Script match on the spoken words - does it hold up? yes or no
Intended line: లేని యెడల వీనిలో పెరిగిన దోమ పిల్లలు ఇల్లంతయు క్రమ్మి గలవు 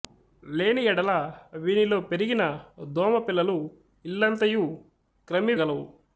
yes